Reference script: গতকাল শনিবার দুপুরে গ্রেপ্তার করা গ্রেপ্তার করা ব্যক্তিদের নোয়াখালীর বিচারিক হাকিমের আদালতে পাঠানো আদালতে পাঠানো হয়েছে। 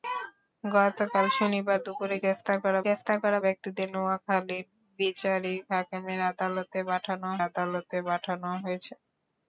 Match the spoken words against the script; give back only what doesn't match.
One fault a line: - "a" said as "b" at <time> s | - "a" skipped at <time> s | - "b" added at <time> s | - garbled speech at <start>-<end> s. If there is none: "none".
none